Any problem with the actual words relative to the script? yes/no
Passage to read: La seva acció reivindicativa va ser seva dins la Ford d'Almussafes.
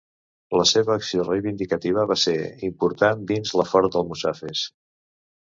yes